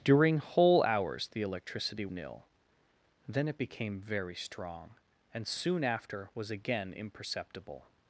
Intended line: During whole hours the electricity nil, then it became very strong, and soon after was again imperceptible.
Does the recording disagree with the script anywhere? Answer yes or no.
no